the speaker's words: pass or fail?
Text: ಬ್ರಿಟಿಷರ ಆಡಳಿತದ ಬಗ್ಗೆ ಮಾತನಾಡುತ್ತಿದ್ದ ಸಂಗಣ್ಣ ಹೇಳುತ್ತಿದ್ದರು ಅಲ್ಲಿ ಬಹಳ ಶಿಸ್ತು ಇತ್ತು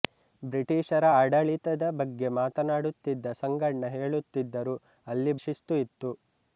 fail